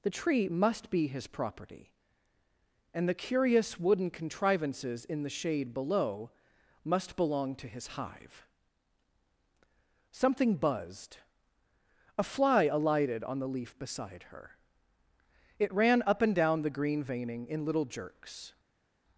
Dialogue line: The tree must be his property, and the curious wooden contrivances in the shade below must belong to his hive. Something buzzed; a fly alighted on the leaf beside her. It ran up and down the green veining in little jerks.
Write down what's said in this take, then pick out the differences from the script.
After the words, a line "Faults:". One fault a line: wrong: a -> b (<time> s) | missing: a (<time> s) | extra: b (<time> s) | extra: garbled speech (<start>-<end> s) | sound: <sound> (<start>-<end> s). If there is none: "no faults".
The tree must be his property, and the curious wooden contrivances in the shade below must belong to his hive. Something buzzed; a fly alighted on the leaf beside her. It ran up and down the green veining in little jerks.
Faults:
no faults